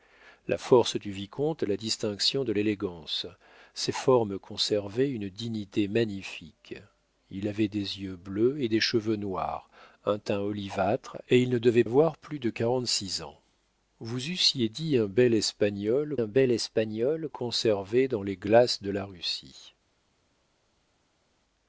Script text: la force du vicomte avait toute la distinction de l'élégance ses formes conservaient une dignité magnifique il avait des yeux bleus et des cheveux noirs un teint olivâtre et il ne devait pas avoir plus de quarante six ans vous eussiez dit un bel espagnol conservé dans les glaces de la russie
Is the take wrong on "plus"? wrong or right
right